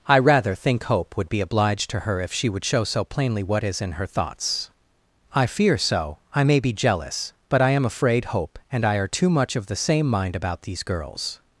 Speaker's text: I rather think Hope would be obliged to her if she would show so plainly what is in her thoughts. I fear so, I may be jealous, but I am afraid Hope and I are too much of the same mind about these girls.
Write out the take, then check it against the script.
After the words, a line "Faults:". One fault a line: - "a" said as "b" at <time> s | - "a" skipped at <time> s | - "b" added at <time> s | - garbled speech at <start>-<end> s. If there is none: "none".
I rather think Hope would be obliged to her if she would show so plainly what is in her thoughts. I fear so, I may be jealous, but I am afraid Hope and I are too much of the same mind about these girls.
Faults:
none